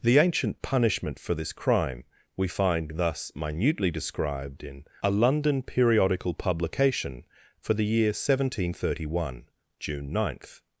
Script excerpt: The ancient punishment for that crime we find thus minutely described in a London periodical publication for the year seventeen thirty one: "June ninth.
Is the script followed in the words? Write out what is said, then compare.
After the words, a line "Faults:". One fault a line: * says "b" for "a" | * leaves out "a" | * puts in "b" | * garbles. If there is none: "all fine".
The ancient punishment for this crime we find thus minutely described in a London periodical publication for the year seventeen thirty one: "June ninth.
Faults:
* says "this" for "that"